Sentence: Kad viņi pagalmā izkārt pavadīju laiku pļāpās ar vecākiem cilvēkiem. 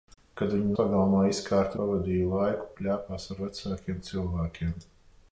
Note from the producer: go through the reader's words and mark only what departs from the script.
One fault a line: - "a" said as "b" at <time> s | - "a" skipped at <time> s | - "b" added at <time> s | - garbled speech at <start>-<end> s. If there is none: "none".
none